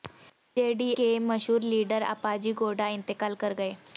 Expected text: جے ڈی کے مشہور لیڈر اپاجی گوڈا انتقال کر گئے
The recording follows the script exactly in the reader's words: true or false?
true